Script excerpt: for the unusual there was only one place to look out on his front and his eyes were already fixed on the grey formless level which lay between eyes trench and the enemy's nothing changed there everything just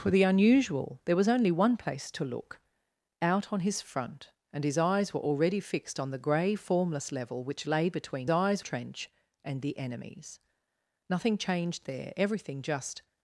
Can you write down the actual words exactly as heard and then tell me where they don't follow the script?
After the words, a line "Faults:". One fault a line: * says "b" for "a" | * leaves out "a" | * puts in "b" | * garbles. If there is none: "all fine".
for the unusual there was only one place to look out on his front and his eyes were already fixed on the grey formless level which lay between eyes trench and the enemy's nothing changed there everything just
Faults:
all fine